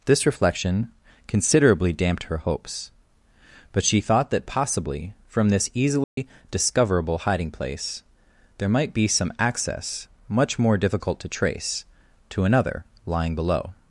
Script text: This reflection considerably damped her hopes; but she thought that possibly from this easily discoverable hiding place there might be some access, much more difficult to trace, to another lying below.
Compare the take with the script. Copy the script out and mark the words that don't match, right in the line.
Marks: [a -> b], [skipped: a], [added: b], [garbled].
This reflection considerably damped her hopes; but she thought that possibly from this easily discoverable hiding place there might be some access, much more difficult to trace, to another lying below.